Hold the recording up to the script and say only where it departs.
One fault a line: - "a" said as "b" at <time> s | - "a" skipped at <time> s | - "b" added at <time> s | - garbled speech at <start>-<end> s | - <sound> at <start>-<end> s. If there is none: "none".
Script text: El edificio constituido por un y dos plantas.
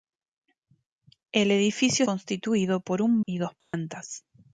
- dropout at 3.6-3.7 s